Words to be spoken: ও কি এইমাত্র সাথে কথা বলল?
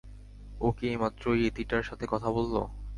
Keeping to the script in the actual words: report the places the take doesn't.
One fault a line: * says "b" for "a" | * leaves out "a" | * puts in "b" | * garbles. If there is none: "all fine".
* puts in "ইয়েতিটার"